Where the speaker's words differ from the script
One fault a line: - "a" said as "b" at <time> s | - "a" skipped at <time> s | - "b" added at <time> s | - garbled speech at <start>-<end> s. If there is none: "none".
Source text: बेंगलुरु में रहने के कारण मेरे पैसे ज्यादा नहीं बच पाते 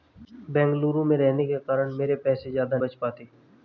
- "नहीं" skipped at 2.8 s